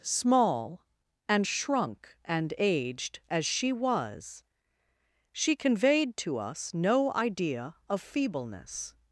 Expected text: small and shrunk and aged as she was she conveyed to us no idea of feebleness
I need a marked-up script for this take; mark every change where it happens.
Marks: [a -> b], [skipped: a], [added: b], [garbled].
small and shrunk and aged as she was she conveyed to us no idea of feebleness